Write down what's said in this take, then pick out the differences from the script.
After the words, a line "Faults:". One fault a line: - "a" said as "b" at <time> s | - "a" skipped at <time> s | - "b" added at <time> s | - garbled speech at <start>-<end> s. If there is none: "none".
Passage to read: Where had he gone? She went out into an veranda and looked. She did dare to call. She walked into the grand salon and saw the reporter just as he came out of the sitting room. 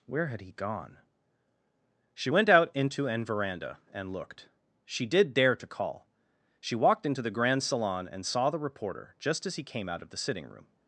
Where had he gone? She went out into an veranda and looked. She did dare to call. She walked into the grand salon and saw the reporter just as he came out of the sitting room.
Faults:
none